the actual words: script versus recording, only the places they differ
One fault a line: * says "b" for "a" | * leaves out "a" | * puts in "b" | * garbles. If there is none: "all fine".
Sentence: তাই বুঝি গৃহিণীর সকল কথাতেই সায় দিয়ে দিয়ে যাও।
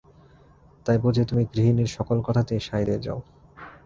* puts in "তুমি"
* leaves out "দিয়ে"